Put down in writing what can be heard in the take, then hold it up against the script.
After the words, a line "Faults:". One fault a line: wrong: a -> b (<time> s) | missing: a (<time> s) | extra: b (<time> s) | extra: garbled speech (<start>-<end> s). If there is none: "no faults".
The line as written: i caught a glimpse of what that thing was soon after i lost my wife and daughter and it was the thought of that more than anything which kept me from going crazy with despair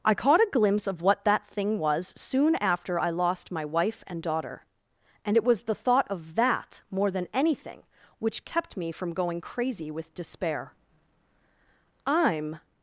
i caught a glimpse of what that thing was soon after i lost my wife and daughter and it was the thought of that more than anything which kept me from going crazy with despair i'm
Faults:
extra: i'm (12.1 s)